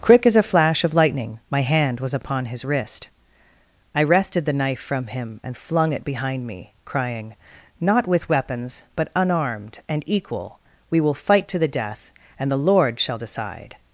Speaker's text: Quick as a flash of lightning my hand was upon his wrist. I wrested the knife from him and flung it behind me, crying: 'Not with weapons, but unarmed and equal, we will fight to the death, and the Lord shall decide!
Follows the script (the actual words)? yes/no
yes